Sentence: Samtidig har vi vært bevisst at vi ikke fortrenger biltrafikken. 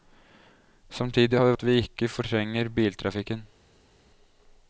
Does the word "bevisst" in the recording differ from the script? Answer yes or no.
yes